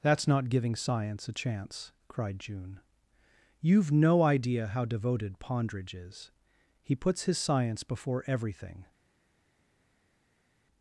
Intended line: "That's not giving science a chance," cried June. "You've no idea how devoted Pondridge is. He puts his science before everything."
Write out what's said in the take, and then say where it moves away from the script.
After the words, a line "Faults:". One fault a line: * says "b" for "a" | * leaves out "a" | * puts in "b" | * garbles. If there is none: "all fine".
"That's not giving science a chance," cried June. "You've no idea how devoted Pondridge is. He puts his science before everything."
Faults:
all fine